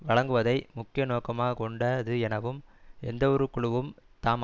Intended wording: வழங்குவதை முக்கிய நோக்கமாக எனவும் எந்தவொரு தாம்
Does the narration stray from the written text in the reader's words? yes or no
yes